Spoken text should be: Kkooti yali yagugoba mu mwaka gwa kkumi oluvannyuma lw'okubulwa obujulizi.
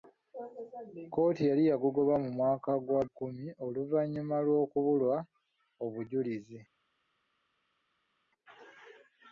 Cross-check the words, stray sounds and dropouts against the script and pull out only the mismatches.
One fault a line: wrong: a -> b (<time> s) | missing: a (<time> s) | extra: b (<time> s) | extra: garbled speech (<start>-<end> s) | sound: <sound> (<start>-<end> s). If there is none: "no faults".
no faults